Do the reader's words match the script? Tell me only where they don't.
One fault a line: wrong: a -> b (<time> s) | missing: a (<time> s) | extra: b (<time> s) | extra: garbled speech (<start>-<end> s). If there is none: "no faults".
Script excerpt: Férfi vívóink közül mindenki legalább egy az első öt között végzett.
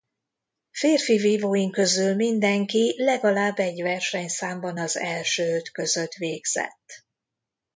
extra: versenyszámban (3.8 s)